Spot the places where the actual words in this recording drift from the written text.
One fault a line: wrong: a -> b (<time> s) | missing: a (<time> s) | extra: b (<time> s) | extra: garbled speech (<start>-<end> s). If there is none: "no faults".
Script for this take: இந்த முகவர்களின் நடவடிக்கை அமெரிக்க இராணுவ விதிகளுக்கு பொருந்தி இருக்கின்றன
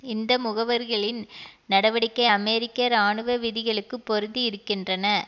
no faults